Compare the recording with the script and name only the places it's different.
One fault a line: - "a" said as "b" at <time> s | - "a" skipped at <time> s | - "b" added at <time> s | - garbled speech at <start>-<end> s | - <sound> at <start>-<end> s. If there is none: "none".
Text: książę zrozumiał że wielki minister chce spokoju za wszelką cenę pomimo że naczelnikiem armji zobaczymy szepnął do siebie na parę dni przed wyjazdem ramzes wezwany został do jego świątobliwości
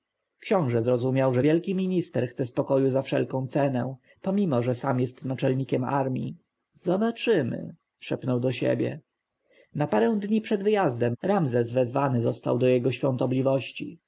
- "sam jest" added at 4.7 s